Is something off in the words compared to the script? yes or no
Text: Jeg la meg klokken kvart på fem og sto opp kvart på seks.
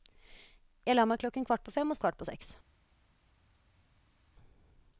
yes